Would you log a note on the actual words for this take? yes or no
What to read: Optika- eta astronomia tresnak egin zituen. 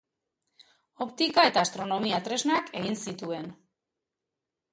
no